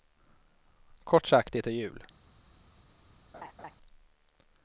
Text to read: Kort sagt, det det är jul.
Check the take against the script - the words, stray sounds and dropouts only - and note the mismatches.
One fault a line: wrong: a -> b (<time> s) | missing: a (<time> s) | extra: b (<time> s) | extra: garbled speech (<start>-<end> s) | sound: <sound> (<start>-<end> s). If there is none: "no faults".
missing: det (1.7 s)
sound: laugh (3.3-3.8 s)